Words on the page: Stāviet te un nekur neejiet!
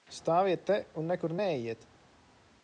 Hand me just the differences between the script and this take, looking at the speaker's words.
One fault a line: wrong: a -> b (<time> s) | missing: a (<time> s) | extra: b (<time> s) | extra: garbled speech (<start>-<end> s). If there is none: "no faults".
no faults